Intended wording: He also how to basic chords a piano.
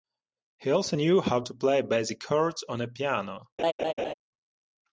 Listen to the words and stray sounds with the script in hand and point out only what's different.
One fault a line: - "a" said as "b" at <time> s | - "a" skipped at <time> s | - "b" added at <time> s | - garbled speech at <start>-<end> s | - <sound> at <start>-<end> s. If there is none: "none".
- "knew" added at 1.0 s
- "play" added at 1.6 s
- "on" added at 2.7 s
- laugh at 3.6-4.1 s